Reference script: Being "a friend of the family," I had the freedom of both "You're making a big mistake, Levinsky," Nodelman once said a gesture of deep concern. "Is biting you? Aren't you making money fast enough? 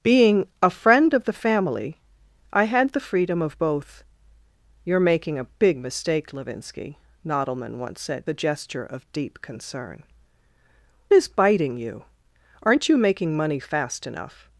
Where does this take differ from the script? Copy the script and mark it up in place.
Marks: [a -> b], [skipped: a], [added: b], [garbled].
Being "a friend of the family," I had the freedom of both "You're making a big mistake, Levinsky," Nodelman once said a gesture of deep concern. "Is biting you? Aren't you making money fast enough?